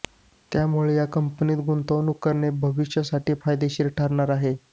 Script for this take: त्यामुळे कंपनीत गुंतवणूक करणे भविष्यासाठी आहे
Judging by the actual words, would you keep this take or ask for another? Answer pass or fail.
fail